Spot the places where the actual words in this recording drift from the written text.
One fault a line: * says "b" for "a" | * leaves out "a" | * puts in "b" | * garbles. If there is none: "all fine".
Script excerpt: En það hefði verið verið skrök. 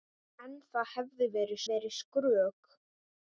all fine